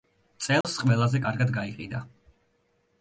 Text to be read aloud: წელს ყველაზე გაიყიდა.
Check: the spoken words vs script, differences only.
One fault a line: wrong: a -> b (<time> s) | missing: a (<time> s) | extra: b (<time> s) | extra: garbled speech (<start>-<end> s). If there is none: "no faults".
extra: კარგად (1.2 s)